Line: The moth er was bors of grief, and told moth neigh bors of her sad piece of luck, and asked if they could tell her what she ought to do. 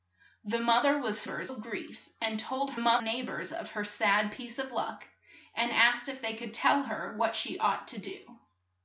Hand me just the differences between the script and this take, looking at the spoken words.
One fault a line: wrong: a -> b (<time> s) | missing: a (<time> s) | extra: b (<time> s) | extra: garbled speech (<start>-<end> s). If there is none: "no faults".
no faults